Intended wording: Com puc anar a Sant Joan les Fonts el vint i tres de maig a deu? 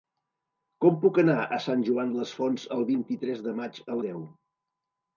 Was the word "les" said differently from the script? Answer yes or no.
no